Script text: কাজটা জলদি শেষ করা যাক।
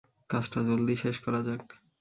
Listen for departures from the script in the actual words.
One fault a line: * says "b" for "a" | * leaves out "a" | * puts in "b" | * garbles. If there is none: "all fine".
all fine